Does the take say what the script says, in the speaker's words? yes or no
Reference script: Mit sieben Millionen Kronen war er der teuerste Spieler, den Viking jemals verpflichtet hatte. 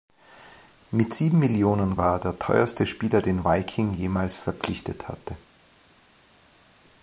no